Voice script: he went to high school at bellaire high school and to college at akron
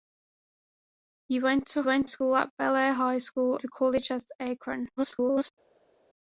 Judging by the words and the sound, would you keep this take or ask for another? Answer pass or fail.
fail